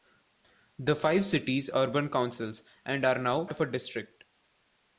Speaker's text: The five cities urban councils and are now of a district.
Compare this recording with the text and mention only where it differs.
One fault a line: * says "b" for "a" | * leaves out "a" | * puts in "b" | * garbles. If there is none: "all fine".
all fine